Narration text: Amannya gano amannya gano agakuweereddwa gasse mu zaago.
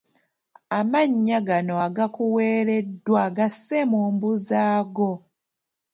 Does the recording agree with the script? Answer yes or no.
no